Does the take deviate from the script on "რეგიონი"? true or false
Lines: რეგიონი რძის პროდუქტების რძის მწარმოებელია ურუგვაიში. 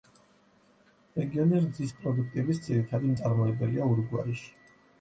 false